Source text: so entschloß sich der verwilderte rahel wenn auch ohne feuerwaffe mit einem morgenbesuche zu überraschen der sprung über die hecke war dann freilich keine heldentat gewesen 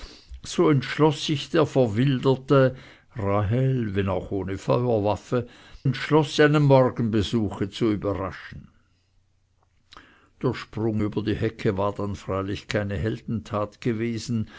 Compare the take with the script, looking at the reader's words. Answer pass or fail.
fail